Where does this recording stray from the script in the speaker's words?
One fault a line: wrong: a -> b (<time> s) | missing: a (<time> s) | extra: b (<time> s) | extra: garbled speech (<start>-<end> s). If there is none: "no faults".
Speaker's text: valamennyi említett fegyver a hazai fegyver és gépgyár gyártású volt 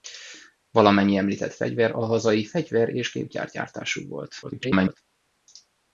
extra: garbled speech (4.4-5.0 s)